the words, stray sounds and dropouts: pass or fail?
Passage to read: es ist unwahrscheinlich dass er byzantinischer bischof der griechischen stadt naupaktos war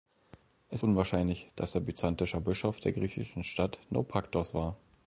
fail